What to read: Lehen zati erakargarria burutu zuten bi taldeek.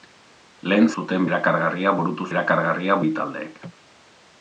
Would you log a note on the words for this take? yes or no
yes